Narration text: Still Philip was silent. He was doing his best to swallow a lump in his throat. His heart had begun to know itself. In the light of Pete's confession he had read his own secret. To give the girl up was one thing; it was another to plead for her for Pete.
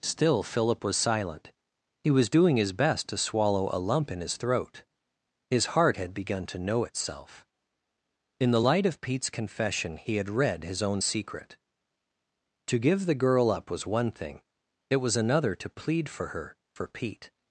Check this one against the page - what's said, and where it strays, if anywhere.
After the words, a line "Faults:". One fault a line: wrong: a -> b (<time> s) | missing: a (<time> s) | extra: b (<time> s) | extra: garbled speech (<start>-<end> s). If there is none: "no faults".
Still Philip was silent. He was doing his best to swallow a lump in his throat. His heart had begun to know itself. In the light of Pete's confession he had read his own secret. To give the girl up was one thing; it was another to plead for her for Pete.
Faults:
no faults